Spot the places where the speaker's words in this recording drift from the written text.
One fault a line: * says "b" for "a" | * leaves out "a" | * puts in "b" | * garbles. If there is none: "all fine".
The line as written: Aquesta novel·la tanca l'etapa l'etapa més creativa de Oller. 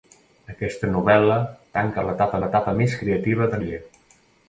all fine